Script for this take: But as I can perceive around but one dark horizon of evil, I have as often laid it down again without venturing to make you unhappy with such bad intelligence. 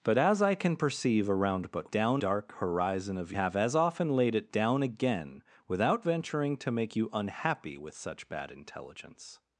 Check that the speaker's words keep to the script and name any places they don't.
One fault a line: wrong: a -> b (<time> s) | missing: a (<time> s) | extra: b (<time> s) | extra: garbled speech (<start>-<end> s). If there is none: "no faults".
wrong: one -> down (1.9 s)
missing: evil I (3.3 s)